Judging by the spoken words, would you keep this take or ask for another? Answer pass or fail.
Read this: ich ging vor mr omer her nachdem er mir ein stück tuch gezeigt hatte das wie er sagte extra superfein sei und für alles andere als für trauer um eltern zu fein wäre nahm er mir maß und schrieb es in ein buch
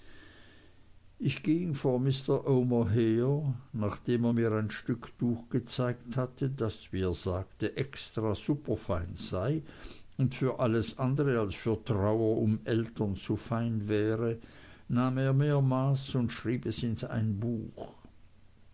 pass